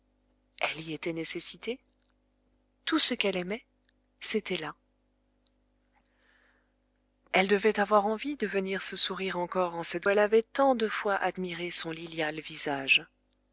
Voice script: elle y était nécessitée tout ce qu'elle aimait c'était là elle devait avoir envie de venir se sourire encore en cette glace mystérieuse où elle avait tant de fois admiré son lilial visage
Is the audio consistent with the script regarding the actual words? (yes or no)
no